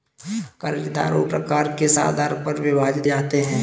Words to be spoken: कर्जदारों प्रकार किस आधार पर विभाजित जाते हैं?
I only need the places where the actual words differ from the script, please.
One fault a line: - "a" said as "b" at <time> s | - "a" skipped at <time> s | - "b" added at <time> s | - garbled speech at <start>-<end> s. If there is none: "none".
none